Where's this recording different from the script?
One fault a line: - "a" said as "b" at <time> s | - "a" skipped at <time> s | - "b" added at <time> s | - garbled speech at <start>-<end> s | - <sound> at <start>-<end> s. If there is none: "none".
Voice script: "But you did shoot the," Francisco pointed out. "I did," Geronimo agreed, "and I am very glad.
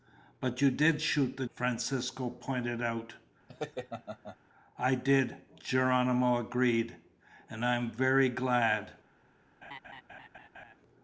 - laugh at 3.5-4.4 s
- laugh at 9.6-10.7 s